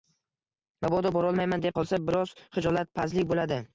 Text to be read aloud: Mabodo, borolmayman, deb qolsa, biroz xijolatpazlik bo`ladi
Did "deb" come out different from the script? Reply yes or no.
no